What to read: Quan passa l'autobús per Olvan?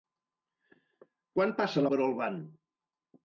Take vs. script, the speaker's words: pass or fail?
fail